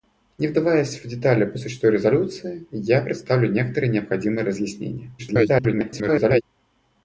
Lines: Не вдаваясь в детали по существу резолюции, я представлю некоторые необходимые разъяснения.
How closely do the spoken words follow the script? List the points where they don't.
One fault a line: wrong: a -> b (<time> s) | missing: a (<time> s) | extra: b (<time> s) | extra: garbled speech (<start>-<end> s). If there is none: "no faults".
extra: garbled speech (5.2-6.4 s)